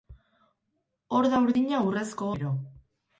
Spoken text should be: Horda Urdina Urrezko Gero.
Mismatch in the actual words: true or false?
false